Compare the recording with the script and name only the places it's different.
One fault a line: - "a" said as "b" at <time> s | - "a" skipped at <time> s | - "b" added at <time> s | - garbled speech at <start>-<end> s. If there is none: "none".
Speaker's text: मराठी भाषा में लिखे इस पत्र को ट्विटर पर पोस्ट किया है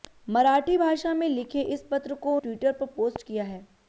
none